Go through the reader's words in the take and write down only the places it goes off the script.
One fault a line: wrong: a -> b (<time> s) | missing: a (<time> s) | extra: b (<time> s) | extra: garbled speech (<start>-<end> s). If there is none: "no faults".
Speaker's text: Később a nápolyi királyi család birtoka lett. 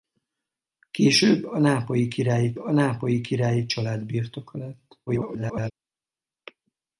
extra: a nápolyi királyi (2.6 s)
extra: garbled speech (5.1-5.7 s)